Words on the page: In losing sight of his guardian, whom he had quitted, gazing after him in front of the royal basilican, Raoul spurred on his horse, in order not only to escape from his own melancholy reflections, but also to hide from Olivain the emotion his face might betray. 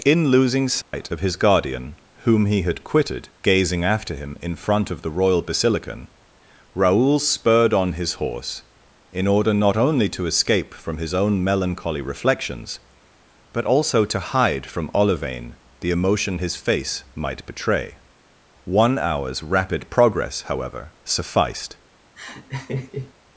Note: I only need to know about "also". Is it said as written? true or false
true